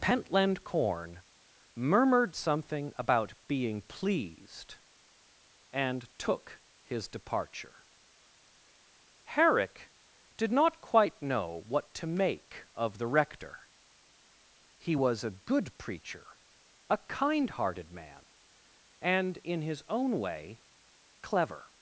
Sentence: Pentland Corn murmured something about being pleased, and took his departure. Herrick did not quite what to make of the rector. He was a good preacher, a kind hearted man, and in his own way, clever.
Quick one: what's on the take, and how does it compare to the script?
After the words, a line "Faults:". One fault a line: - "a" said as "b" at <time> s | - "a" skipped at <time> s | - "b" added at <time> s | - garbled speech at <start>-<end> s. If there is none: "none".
Pentland Corn murmured something about being pleased, and took his departure. Herrick did not quite know what to make of the rector. He was a good preacher, a kind hearted man, and in his own way, clever.
Faults:
- "know" added at 11.2 s